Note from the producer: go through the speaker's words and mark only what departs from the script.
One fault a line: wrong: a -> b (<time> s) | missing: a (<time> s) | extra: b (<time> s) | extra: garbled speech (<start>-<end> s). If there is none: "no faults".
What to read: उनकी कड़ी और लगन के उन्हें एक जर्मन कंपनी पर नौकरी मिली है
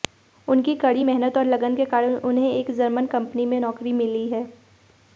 extra: मेहनत (1.0 s)
extra: कारण (1.9 s)
wrong: पर -> में (3.4 s)